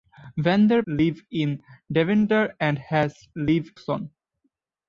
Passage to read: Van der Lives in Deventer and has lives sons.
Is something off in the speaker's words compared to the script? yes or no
no